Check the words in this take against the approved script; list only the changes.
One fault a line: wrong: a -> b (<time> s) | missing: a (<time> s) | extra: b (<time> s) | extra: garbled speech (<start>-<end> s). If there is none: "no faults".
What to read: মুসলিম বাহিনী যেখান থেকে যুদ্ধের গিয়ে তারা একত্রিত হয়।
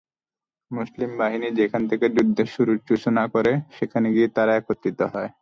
extra: সূচনা করে সেখানে (2.9 s)